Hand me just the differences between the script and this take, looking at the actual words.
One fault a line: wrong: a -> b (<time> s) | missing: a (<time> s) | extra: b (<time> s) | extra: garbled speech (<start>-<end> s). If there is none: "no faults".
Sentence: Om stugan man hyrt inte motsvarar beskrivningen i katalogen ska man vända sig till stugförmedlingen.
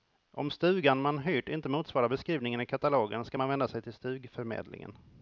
no faults